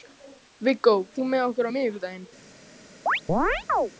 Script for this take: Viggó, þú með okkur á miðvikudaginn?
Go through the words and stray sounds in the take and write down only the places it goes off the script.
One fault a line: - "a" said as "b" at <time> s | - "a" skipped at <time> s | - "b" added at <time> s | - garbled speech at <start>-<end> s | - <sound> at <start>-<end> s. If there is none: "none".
- chirp at 3.1-3.9 s